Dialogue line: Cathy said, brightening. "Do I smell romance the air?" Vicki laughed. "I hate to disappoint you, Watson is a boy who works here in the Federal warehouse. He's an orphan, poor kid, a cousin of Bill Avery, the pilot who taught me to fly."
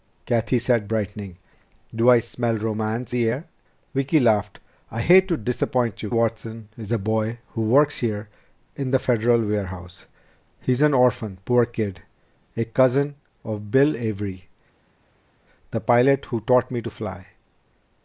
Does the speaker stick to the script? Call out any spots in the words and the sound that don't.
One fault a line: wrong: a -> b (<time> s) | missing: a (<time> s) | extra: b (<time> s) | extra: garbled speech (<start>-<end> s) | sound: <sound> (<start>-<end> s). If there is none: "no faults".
no faults